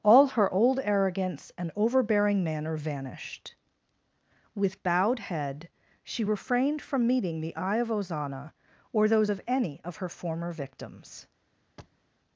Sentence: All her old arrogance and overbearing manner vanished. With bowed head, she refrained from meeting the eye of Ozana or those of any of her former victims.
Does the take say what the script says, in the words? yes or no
yes